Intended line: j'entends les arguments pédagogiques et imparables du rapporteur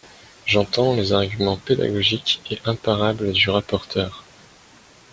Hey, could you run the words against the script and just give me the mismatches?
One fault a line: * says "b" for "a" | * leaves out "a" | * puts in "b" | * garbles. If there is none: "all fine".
all fine